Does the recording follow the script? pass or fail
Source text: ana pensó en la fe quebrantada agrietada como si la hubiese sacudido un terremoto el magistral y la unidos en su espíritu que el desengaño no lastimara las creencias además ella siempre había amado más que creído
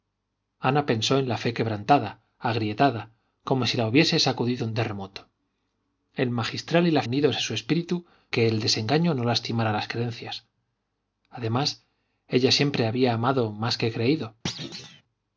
pass